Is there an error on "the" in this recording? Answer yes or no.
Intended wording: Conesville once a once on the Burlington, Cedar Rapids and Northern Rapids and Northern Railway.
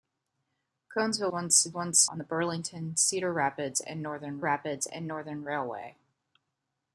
no